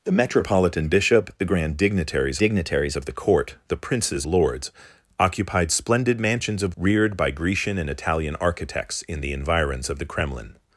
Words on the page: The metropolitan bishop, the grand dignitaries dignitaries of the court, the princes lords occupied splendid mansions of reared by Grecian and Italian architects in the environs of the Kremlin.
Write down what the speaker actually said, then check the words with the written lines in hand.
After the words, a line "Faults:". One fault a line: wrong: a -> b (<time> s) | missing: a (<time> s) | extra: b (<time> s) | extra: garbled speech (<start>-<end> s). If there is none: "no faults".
The metropolitan bishop, the grand dignitaries dignitaries of the court, the princes lords occupied splendid mansions of reared by Grecian and Italian architects in the environs of the Kremlin.
Faults:
no faults